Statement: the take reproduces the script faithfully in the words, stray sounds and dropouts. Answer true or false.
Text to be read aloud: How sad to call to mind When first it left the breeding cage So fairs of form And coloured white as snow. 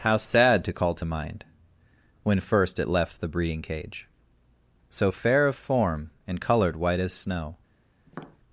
false